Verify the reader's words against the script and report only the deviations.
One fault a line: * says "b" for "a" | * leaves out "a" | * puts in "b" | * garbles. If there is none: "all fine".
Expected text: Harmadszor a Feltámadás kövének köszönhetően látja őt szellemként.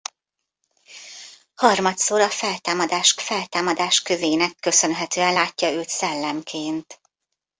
* puts in "Feltámadás"